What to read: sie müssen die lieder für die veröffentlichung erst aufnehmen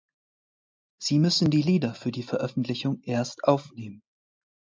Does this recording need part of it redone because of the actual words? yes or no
no